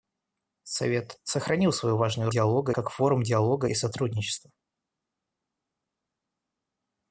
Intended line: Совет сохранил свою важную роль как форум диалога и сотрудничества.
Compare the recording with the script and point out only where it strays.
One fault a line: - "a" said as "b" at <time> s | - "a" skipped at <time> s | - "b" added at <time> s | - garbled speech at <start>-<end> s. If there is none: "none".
- "роль" said as "диалога" at 2.3 s